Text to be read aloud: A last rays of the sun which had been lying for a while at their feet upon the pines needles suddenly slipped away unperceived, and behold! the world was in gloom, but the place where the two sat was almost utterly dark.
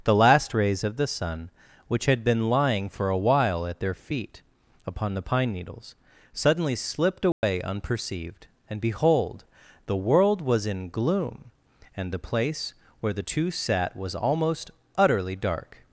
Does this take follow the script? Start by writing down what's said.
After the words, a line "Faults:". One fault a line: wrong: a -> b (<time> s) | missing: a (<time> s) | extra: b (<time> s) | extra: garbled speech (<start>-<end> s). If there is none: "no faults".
The last rays of the sun which had been lying for a while at their feet upon the pine needles suddenly slipped away unperceived, and behold! the world was in gloom, and the place where the two sat was almost utterly dark.
Faults:
wrong: A -> The (0.0 s)
wrong: pines -> pine (5.2 s)
wrong: but -> and (11.9 s)